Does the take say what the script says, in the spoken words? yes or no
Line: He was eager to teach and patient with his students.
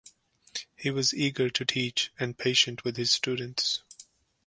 yes